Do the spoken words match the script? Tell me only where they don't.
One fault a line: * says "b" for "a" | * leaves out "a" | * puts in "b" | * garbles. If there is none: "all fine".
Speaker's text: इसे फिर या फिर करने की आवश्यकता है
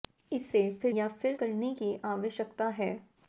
all fine